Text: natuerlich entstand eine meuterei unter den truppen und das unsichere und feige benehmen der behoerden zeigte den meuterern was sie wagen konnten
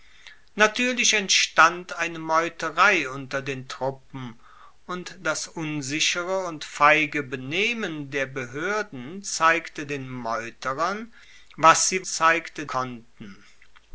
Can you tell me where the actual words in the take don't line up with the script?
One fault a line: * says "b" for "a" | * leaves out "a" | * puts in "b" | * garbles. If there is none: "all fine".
* says "zeigte" for "wagen"